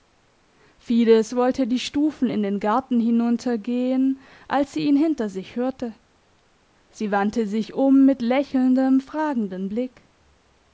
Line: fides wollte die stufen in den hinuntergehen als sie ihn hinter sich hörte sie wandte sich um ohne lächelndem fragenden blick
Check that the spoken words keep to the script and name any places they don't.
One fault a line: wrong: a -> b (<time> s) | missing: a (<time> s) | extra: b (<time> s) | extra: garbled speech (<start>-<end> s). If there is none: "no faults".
extra: garten (2.6 s)
wrong: ohne -> mit (8.1 s)